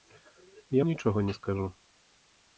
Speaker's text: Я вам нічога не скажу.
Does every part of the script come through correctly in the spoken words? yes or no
no